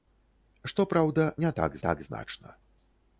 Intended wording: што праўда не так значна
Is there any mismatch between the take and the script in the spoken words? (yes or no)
yes